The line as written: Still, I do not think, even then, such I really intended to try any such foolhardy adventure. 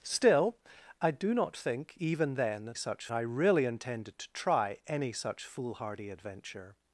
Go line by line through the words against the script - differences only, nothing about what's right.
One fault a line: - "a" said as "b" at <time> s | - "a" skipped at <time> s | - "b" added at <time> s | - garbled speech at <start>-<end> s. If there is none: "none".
none